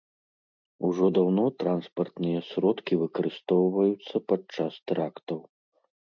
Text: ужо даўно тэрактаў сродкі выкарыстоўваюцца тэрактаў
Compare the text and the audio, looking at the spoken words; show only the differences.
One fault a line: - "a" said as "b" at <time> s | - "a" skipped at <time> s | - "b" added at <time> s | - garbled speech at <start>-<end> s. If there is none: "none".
- "тэрактаў" said as "транспартныя" at 1.6 s
- "падчас" added at 4.3 s